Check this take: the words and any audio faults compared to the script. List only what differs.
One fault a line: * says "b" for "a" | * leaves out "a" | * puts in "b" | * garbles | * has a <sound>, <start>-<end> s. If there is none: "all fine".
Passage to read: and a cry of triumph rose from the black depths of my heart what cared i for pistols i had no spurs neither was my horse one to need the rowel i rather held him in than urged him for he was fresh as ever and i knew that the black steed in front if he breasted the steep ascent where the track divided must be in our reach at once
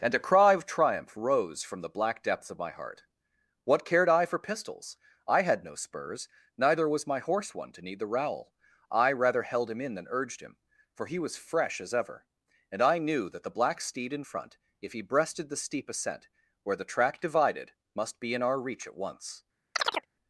* has a chirp, 19.8-20.1 s